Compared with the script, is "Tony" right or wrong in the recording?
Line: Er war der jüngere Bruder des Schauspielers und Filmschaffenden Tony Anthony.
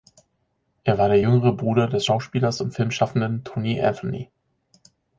right